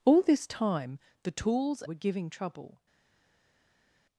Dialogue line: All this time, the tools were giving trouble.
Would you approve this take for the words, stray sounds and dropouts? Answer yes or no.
yes